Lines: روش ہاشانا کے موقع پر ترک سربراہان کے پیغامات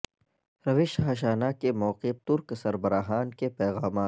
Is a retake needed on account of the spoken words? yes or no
yes